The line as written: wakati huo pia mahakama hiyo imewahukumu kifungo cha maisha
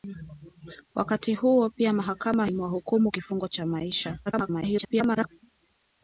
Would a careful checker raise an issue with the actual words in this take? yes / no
yes